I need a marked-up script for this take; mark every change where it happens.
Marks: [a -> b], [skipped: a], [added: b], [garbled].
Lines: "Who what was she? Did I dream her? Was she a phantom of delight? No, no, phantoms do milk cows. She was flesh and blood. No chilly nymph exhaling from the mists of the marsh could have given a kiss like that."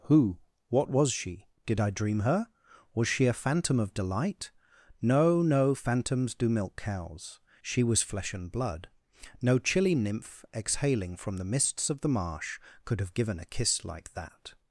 "Who what was she? Did I dream her? Was she a phantom of delight? No, no, phantoms do milk cows. She was flesh and blood. No chilly nymph exhaling from the mists of the marsh could have given a kiss like that."